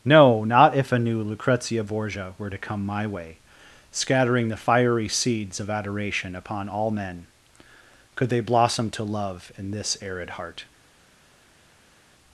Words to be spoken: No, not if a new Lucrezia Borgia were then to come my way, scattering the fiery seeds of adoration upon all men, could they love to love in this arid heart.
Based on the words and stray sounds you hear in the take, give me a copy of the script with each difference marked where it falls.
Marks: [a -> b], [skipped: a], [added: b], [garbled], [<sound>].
No, not if a new Lucrezia Borgia were [skipped: then] to come my way, scattering the fiery seeds of adoration upon all men, could they [love -> blossom] to love in this arid heart.